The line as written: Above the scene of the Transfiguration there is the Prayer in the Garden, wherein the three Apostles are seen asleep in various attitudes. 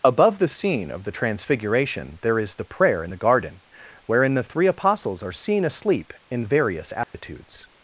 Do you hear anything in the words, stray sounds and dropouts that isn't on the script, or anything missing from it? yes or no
yes